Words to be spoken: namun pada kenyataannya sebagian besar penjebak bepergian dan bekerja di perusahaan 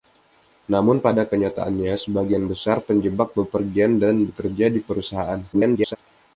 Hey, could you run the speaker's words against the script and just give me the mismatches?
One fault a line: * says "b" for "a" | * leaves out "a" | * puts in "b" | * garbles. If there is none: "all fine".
* garbles